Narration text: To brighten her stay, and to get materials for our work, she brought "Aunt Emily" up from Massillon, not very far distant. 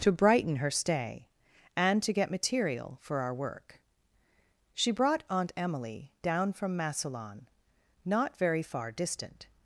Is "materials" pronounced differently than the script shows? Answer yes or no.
yes